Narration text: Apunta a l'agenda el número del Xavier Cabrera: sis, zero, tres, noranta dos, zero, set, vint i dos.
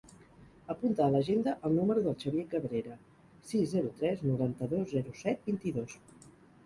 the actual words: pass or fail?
pass